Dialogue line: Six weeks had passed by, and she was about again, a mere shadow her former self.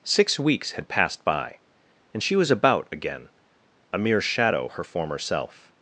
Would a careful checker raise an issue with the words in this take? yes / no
no